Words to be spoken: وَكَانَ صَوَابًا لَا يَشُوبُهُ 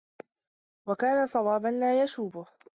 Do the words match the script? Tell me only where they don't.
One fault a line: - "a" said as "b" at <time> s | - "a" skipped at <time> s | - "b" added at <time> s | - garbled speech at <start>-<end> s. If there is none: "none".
none